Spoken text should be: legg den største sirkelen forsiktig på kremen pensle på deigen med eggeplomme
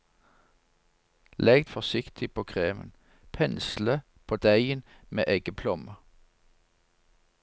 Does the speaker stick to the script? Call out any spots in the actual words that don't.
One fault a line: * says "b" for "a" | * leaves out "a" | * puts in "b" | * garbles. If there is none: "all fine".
* leaves out "den største sirkelen"